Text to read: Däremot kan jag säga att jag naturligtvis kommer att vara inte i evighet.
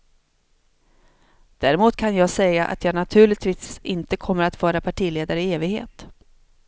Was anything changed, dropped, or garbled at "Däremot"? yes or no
no